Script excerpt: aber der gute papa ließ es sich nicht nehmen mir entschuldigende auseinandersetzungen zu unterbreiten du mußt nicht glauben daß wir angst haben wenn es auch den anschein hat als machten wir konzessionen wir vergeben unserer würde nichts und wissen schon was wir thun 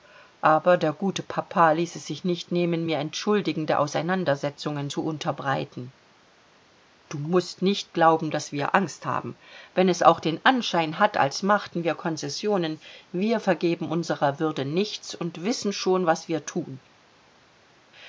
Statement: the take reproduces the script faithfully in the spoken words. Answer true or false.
true